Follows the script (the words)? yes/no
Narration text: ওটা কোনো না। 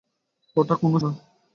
yes